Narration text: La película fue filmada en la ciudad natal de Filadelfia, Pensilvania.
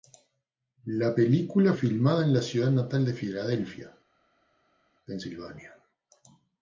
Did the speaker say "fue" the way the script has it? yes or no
no